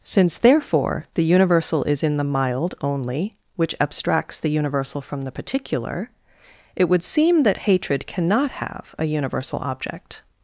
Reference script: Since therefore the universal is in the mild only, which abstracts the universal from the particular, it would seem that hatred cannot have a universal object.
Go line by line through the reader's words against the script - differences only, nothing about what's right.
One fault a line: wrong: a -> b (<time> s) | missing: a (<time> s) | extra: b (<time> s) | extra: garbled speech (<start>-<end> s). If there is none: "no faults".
no faults